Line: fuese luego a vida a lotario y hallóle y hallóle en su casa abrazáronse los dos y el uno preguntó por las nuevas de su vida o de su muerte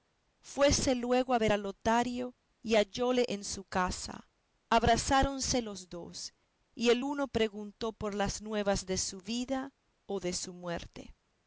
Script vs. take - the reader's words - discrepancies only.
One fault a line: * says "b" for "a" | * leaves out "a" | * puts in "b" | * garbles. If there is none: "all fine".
* says "ver" for "vida"
* leaves out "y hallóle"